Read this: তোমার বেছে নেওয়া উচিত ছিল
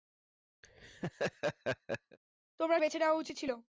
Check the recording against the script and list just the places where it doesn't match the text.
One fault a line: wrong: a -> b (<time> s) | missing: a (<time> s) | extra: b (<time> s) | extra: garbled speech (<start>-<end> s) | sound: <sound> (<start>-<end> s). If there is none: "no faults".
sound: laugh (0.6-2.2 s)